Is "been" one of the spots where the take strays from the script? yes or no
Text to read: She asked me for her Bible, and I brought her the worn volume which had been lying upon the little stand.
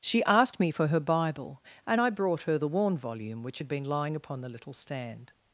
no